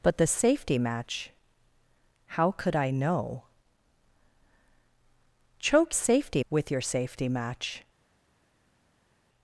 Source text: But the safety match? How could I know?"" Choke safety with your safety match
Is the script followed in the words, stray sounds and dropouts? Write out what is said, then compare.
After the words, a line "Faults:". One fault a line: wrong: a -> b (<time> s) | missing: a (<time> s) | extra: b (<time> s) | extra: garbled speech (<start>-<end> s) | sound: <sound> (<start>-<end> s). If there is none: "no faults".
But the safety match? How could I know?"" Choke safety with your safety match
Faults:
no faults